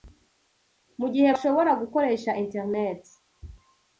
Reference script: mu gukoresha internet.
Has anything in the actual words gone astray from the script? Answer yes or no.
yes